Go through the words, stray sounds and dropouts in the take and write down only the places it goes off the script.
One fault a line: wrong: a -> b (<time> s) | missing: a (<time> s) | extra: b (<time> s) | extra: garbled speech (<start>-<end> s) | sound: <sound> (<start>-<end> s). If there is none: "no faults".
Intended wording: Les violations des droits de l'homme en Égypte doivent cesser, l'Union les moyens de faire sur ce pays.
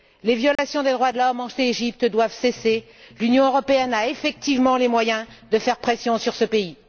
sound: dropout (0.6-0.6 s)
extra: européenne a effectivement (3.5 s)
extra: pression (5.8 s)